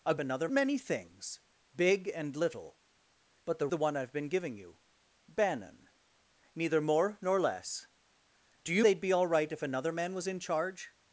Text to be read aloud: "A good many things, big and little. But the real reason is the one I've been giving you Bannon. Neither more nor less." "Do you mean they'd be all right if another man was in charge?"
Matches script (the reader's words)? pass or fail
fail